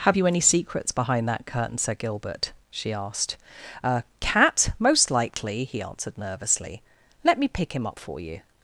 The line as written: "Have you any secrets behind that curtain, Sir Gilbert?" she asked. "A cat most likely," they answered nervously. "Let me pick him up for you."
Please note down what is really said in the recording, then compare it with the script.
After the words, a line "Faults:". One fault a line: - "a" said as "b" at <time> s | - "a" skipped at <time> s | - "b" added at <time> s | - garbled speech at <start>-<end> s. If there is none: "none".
"Have you any secrets behind that curtain, Sir Gilbert?" she asked. "A cat most likely," he answered nervously. "Let me pick him up for you."
Faults:
- "they" said as "he" at 5.7 s